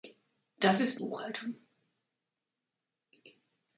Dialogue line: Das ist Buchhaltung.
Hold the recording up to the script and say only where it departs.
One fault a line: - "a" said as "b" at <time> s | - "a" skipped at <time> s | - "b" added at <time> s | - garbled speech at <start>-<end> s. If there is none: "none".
none